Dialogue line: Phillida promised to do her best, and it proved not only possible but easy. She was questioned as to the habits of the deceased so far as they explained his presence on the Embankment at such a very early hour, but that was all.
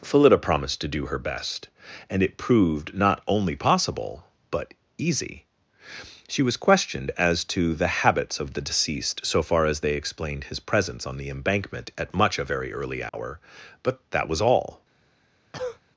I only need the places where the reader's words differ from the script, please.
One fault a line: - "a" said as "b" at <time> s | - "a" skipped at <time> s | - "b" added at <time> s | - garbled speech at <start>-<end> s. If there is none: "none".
- "such" said as "much" at 12.1 s